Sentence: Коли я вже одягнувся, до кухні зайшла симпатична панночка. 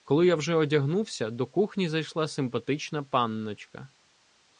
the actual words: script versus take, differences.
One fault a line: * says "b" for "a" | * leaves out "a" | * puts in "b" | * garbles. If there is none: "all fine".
all fine